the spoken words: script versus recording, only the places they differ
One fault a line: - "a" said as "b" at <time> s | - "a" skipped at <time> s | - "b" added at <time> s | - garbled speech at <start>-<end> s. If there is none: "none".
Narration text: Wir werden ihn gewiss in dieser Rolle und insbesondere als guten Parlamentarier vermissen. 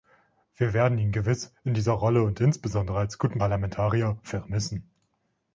none